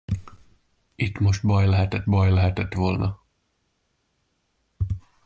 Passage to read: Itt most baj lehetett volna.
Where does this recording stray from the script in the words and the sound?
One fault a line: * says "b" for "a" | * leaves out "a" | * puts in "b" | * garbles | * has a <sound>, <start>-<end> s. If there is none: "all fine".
* puts in "baj lehetett"